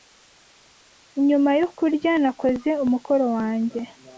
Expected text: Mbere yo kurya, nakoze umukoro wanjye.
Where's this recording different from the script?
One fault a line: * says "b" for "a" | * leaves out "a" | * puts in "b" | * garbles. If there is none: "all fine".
* says "Nyuma" for "Mbere"